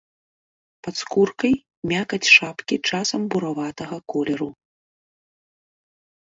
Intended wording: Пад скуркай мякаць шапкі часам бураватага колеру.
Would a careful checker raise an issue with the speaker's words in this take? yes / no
no